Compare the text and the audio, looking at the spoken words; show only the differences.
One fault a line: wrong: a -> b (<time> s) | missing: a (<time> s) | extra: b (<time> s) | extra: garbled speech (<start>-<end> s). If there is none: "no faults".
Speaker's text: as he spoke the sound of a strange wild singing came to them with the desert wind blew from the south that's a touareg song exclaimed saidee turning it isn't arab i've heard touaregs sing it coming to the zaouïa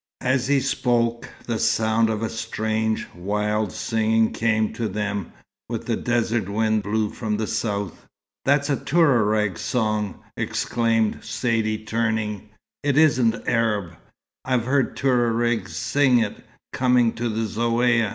no faults